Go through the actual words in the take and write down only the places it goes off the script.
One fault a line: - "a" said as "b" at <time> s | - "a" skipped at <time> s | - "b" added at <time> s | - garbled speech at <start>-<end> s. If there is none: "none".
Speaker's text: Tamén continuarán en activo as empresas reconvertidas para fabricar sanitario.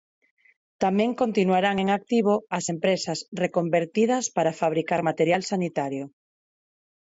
- "material" added at 5.1 s